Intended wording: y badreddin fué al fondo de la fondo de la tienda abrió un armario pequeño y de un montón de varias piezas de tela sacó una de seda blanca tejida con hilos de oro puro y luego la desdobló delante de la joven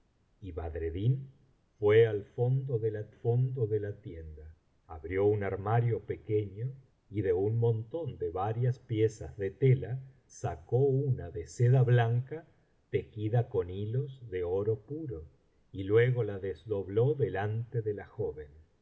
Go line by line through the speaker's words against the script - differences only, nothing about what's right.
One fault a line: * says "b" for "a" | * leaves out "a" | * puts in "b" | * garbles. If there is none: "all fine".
all fine